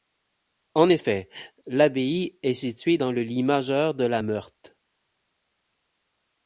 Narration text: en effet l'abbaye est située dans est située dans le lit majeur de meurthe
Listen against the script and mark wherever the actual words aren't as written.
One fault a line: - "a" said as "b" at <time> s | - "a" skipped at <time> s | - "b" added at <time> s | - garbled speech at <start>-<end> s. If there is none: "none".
- "est située dans" skipped at 3.1 s
- "la" added at 4.0 s